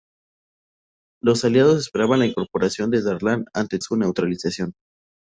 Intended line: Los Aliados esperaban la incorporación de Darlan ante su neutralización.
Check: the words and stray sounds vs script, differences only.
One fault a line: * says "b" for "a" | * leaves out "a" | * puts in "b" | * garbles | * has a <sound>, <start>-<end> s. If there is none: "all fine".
all fine